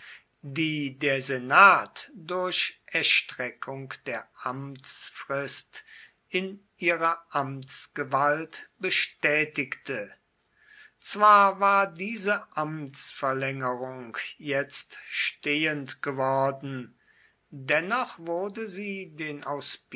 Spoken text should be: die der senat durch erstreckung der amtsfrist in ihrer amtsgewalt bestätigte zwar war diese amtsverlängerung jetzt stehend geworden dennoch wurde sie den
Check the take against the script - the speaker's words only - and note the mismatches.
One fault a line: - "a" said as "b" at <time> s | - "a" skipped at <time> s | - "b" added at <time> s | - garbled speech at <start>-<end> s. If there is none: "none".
none